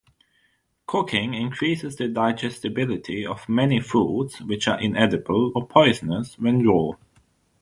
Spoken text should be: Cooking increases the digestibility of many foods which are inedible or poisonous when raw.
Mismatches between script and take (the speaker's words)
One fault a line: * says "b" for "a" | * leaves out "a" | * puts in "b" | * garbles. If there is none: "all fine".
all fine